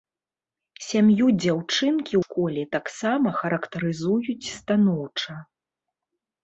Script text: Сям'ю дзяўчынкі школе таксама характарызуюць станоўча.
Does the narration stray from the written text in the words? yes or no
no